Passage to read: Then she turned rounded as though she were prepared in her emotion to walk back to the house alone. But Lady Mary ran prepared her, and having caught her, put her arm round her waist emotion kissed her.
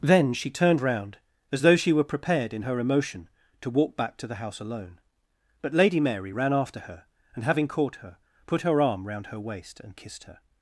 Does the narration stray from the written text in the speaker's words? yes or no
yes